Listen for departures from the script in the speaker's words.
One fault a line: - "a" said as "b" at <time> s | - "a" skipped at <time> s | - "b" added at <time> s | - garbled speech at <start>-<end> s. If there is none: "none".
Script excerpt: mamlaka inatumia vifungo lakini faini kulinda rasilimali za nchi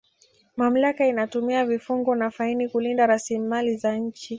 - "lakini" said as "na" at 2.1 s